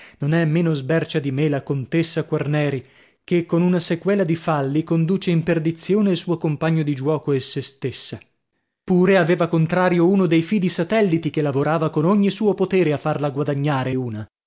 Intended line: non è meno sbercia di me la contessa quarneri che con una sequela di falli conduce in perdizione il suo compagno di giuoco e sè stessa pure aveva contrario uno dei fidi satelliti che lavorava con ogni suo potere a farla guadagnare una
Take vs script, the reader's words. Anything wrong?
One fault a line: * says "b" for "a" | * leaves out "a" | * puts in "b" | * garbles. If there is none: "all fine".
all fine